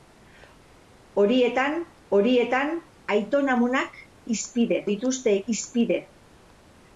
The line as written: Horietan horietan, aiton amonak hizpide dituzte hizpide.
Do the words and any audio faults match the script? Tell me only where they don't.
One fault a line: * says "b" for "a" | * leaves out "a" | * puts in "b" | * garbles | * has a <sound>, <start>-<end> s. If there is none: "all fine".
all fine